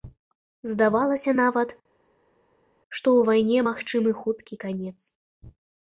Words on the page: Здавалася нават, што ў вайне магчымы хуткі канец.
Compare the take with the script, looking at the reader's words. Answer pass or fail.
pass